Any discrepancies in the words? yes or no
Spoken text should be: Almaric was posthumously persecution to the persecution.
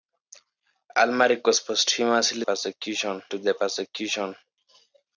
no